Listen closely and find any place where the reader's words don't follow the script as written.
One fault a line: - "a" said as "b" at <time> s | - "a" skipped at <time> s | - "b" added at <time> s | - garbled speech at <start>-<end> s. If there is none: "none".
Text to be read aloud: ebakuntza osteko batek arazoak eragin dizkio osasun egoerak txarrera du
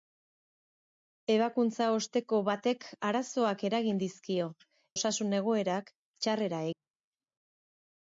none